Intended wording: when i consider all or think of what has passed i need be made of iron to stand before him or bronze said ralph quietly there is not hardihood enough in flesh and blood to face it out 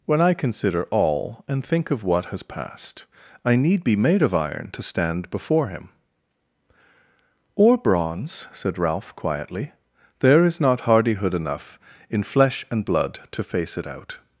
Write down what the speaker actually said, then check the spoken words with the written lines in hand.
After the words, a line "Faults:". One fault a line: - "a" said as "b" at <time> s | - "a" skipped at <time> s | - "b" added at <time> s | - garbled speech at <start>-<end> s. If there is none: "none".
when i consider all and think of what has passed i need be made of iron to stand before him or bronze said ralph quietly there is not hardihood enough in flesh and blood to face it out
Faults:
- "or" said as "and" at 1.5 s